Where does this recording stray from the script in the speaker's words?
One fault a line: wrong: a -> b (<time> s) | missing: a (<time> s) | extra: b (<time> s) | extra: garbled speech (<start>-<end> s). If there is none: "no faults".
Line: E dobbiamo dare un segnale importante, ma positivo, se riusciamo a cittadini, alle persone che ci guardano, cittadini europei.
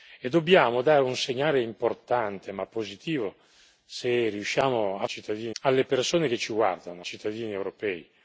no faults